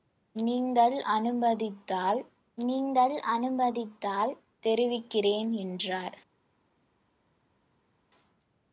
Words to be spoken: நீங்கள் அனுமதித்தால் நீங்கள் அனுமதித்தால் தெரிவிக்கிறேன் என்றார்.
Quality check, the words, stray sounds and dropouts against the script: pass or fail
pass